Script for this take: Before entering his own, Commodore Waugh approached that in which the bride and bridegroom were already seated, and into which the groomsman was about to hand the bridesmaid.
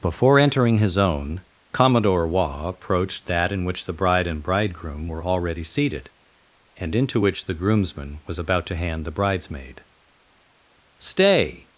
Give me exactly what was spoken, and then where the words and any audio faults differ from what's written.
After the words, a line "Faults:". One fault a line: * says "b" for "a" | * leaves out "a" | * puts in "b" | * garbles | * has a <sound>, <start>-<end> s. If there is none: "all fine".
Before entering his own, Commodore Waugh approached that in which the bride and bridegroom were already seated, and into which the groomsman was about to hand the bridesmaid. "Stay
Faults:
* puts in "Stay"